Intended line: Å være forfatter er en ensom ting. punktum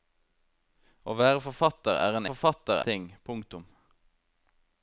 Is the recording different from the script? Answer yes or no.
yes